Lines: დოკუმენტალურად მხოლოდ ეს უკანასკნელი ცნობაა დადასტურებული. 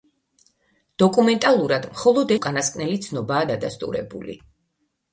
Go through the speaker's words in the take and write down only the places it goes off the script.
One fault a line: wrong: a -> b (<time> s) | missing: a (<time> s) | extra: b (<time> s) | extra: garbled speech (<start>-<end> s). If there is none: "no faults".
missing: ეს (2.3 s)